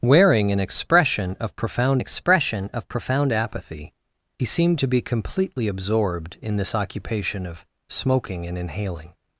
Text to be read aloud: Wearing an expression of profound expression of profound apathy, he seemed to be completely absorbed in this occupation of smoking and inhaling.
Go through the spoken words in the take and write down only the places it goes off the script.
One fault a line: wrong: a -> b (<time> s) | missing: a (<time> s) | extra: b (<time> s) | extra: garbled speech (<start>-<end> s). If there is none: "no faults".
no faults